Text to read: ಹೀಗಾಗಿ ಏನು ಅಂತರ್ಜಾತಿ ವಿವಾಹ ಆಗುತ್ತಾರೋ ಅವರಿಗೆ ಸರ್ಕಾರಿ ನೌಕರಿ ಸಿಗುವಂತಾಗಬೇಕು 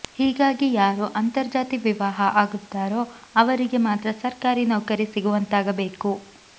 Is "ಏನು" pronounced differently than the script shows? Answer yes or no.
yes